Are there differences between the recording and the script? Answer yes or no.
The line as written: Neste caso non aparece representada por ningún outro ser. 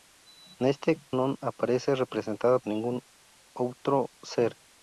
yes